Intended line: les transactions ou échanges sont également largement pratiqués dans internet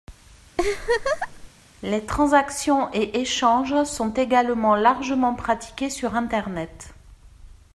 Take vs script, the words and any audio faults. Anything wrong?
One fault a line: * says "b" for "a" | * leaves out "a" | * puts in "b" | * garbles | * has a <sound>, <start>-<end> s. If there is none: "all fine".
* has a laugh, 0.6-1.5 s
* says "et" for "ou"
* says "sur" for "dans"